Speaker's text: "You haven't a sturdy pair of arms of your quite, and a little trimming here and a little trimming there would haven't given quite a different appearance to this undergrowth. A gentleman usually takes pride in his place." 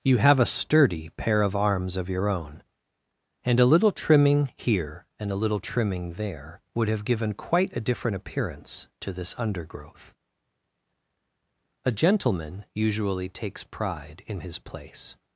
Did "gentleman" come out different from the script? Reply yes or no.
no